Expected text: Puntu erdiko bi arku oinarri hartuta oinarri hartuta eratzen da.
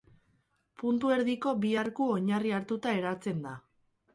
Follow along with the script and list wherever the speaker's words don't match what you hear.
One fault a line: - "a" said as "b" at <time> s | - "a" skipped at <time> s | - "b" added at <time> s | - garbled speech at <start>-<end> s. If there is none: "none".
- "oinarri hartuta" skipped at 3.0 s